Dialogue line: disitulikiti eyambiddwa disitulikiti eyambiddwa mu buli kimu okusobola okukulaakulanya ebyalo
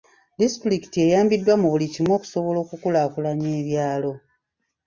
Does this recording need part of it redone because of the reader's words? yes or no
yes